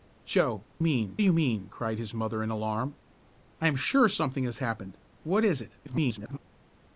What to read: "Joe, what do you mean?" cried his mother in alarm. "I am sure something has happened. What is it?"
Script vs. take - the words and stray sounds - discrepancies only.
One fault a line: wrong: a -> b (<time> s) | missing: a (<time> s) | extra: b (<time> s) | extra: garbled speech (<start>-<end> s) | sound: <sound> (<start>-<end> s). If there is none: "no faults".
wrong: what -> mean (0.8 s)
extra: garbled speech (5.8-6.4 s)